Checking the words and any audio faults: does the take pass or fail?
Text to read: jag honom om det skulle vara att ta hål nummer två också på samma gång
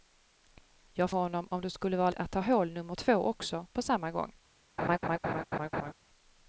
fail